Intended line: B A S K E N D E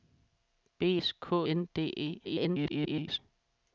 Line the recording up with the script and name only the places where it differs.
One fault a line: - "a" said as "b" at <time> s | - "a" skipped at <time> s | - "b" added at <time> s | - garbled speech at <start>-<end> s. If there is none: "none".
- "A" skipped at 1.0 s
- "E" skipped at 1.5 s
- garbled speech at 2.2-3.2 s